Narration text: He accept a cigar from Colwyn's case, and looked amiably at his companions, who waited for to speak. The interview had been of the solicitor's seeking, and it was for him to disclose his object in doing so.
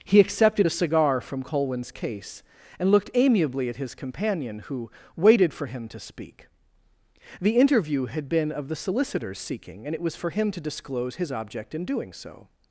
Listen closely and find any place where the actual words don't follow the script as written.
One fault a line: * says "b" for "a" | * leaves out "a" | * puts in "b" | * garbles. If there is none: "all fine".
* says "accepted" for "accept"
* says "companion" for "companions"
* puts in "him"